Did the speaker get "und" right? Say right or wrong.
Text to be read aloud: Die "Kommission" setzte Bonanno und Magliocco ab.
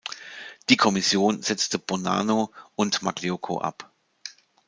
right